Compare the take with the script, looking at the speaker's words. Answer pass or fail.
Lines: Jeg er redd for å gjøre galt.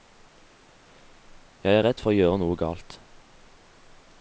fail